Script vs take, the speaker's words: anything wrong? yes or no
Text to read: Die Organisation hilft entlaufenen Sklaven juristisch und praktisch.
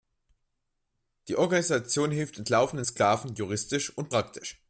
no